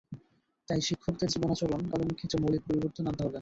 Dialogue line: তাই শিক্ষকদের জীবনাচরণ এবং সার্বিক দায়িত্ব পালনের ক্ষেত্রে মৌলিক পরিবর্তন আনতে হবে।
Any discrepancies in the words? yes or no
yes